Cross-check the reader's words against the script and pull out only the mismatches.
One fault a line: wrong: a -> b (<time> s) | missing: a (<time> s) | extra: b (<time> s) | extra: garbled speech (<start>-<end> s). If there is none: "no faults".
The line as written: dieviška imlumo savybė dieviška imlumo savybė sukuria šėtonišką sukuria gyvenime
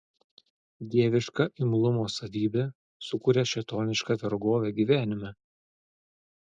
missing: dieviška imlumo savybė (2.6 s)
wrong: sukuria -> vergovę (4.2 s)